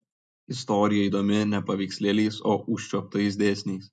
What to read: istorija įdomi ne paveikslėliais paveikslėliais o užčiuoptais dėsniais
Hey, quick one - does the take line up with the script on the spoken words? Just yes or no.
no